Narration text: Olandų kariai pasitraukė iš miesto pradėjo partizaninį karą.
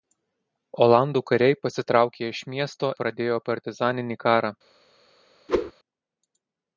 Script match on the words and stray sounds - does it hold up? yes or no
no